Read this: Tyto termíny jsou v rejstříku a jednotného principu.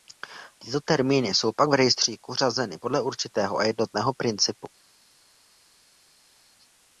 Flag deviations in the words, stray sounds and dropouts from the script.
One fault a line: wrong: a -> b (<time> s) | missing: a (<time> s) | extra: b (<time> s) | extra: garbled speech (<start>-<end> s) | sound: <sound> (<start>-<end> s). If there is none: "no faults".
extra: pak (1.6 s)
extra: řazeny podle určitého (2.3 s)